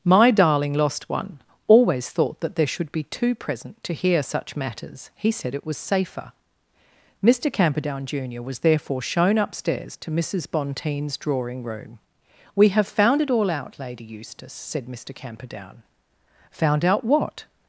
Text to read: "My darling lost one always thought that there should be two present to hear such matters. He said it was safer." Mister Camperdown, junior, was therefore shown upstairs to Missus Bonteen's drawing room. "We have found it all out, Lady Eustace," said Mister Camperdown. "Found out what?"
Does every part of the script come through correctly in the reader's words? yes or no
yes